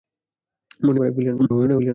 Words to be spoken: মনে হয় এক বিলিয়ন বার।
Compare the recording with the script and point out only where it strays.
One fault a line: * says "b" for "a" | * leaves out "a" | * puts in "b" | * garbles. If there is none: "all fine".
* leaves out "হয়"
* garbles